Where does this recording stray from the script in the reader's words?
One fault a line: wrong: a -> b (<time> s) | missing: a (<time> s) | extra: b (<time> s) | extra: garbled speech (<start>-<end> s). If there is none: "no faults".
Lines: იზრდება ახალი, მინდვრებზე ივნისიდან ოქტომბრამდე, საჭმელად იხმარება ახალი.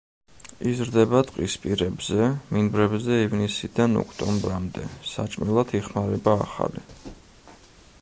wrong: ახალი -> ტყისპირებზე (1.3 s)